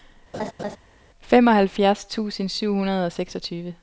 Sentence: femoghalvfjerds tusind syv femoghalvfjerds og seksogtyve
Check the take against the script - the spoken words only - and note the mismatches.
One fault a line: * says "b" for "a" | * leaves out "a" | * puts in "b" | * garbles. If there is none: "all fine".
* says "hundrede" for "femoghalvfjerds"